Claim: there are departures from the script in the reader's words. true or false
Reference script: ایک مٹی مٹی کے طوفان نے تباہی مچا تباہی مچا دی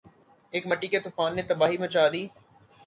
true